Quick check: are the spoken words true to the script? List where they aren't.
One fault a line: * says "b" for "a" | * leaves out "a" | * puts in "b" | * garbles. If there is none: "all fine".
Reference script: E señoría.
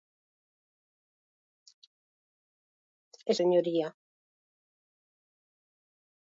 all fine